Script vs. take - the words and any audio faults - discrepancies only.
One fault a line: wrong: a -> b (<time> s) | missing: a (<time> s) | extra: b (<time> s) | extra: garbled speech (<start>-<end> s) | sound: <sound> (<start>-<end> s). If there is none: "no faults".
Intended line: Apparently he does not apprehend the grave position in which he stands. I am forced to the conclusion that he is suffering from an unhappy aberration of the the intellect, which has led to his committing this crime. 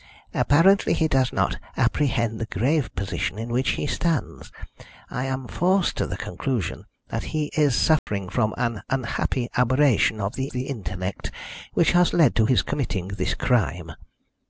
sound: dropout (8.0-8.1 s)